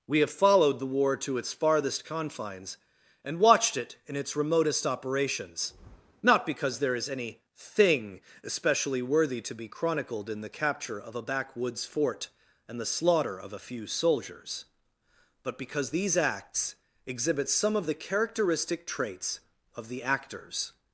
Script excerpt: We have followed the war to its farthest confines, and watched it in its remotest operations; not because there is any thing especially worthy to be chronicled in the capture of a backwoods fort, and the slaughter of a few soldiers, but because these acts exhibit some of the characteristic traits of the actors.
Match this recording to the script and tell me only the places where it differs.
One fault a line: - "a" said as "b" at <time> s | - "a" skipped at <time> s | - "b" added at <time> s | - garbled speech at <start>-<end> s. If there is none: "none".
none